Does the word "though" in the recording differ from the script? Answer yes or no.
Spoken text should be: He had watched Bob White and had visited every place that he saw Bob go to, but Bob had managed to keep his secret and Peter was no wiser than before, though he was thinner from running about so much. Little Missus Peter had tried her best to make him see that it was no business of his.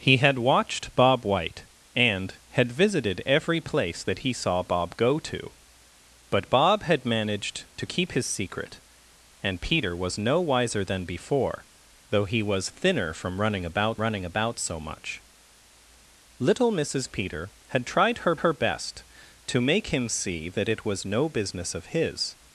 no